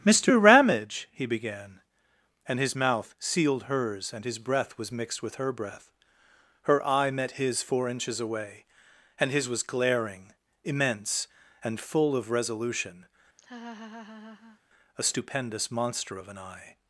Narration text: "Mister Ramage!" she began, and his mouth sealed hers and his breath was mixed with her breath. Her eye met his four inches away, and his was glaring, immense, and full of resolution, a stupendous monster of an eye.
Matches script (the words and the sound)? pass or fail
fail